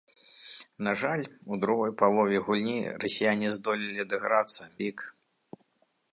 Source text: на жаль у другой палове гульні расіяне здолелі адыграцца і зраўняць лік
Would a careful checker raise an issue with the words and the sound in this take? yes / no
yes